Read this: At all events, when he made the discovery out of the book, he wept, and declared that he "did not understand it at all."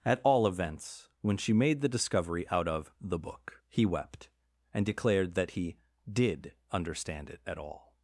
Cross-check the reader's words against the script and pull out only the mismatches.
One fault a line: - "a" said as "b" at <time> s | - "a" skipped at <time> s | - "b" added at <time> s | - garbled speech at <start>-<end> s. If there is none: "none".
- "he" said as "she" at 1.4 s
- "not" skipped at 6.5 s